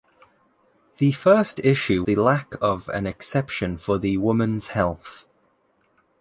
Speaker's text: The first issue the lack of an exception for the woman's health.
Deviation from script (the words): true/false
false